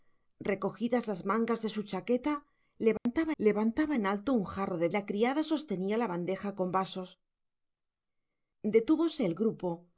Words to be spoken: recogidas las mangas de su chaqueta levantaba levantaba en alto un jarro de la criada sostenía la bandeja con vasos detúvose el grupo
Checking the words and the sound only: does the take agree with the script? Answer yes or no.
no